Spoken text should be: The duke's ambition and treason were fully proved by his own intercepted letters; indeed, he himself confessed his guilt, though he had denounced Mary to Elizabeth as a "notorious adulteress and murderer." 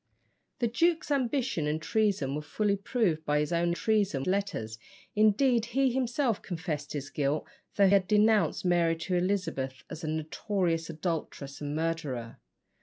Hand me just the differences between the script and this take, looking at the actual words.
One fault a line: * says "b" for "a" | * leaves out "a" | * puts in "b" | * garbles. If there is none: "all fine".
* says "treason" for "intercepted"
* leaves out "he"